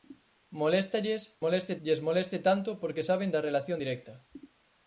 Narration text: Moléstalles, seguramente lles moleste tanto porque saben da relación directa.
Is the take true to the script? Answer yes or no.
no